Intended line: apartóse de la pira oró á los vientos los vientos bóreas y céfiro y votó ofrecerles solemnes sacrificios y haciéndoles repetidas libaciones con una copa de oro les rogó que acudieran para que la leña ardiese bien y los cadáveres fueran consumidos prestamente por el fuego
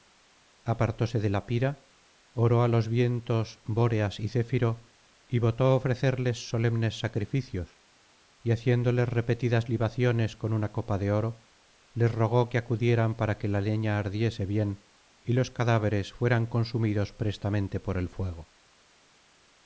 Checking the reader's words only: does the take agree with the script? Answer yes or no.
no